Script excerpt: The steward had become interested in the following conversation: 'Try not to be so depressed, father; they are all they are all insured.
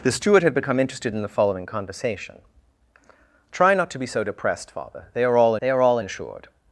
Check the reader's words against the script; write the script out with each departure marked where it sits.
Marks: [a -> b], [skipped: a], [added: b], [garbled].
The steward had become interested in the following conversation: 'Try not to be so depressed, father; they are all they are all insured.